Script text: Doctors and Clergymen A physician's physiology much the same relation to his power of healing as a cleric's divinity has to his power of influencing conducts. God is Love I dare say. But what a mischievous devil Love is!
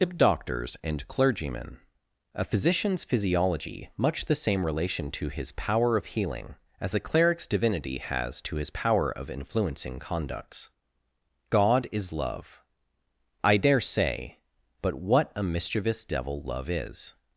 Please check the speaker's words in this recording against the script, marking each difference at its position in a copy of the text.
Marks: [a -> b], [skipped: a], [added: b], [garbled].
Doctors and Clergymen A physician's physiology much the same relation to his power of healing as a cleric's divinity has to his power of influencing conducts. God is Love I dare say. But what a mischievous devil Love is!